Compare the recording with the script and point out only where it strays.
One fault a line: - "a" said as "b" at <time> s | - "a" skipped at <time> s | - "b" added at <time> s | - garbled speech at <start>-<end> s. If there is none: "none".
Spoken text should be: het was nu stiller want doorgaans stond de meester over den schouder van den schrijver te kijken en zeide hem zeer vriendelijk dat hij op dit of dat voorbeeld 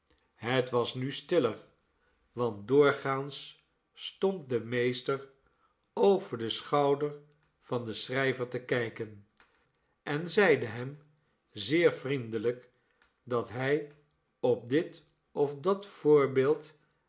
none